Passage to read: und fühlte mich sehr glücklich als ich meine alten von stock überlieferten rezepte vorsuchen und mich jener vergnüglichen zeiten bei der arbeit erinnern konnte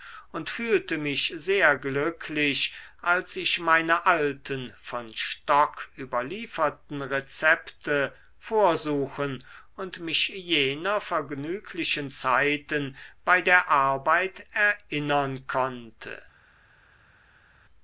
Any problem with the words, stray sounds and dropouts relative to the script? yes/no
no